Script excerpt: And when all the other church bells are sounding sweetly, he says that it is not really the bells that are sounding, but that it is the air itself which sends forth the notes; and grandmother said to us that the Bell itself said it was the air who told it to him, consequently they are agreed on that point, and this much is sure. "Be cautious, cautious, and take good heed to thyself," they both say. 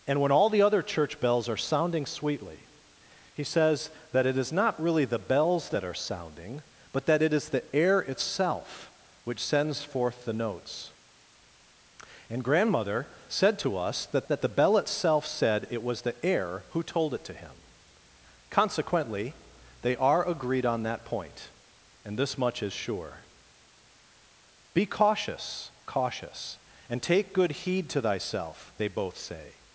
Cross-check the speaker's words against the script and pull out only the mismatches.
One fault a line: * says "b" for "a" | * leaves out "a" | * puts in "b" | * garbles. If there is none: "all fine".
* puts in "that"